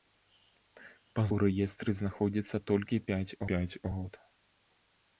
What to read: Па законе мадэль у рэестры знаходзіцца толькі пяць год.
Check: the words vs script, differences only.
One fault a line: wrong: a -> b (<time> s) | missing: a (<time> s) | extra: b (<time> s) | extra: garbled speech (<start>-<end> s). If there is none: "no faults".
missing: законе мадэль (1.2 s)
extra: пяць (3.5 s)